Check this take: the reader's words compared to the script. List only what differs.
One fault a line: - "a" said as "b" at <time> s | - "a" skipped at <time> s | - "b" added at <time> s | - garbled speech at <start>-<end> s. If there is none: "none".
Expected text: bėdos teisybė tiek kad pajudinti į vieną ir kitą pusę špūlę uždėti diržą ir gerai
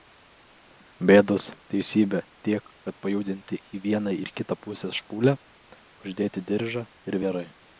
none